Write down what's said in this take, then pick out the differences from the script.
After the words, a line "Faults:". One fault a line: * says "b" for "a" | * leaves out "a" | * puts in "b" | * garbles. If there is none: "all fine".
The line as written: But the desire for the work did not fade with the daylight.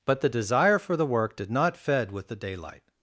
But the desire for the work did not fed with the daylight.
Faults:
* says "fed" for "fade"